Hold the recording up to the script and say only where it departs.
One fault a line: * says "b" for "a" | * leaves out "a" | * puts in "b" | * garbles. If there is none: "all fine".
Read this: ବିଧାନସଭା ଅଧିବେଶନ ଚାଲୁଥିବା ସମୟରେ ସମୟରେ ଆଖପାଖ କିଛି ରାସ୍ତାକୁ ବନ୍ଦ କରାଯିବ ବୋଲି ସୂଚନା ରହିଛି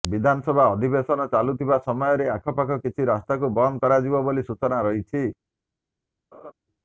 * leaves out "ସମୟରେ"